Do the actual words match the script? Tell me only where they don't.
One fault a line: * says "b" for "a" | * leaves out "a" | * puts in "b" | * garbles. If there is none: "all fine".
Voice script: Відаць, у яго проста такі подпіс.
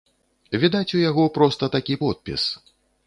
all fine